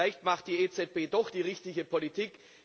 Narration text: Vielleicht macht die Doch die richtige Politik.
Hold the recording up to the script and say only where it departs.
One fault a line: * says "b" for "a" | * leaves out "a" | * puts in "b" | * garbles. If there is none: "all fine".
* puts in "EZB"